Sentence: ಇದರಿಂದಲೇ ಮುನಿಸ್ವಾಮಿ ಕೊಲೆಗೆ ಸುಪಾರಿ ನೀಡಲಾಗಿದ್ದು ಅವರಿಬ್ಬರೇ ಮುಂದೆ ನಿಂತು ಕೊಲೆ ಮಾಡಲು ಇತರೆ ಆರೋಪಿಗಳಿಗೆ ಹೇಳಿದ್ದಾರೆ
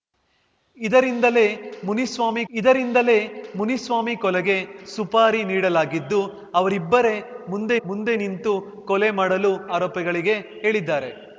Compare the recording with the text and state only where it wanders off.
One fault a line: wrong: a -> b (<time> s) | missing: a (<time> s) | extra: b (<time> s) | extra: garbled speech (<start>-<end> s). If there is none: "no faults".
extra: ಇದರಿಂದಲೇ ಮುನಿಸ್ವಾಮಿ (2.5 s)
extra: ಮುಂದೆ (7.9 s)
missing: ಇತರೆ (9.5 s)